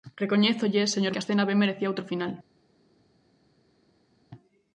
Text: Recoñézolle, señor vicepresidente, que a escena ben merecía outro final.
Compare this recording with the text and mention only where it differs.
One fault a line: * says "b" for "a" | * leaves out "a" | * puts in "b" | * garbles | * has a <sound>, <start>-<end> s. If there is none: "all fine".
* leaves out "vicepresidente"